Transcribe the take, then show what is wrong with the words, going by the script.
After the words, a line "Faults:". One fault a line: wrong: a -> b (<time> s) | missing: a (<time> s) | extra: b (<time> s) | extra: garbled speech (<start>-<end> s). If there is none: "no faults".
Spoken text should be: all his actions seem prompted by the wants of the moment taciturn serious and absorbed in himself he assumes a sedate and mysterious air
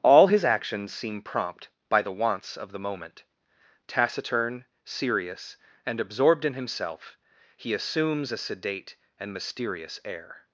all his actions seem prompt by the wants of the moment taciturn serious and absorbed in himself he assumes a sedate and mysterious air
Faults:
wrong: prompted -> prompt (1.2 s)